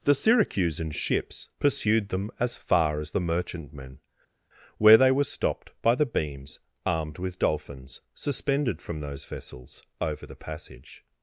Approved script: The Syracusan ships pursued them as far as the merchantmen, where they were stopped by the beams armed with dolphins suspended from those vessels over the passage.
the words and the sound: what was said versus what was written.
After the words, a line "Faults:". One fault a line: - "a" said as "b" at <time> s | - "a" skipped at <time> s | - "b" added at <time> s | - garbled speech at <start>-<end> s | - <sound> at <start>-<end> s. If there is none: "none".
The Syracusan ships pursued them as far as the merchantmen, where they were stopped by the beams armed with dolphins suspended from those vessels over the passage.
Faults:
none